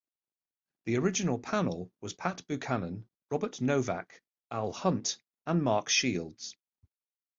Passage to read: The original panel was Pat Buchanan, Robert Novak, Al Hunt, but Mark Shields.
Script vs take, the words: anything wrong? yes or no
yes